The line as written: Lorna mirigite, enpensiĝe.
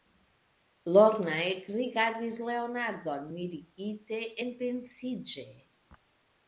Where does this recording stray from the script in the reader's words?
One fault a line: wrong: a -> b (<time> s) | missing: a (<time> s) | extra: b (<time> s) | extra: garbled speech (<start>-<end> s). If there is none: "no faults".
extra: ekrigardis Leonardon (1.5 s)